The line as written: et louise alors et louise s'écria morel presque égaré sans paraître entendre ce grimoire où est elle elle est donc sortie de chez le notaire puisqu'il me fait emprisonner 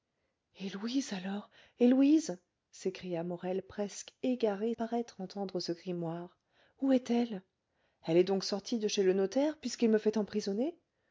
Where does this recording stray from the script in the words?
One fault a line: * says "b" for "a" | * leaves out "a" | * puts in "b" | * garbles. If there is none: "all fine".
* leaves out "sans"